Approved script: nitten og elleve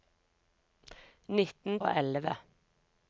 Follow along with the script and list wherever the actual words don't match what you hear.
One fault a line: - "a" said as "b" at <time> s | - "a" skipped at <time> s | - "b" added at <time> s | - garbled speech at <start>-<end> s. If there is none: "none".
none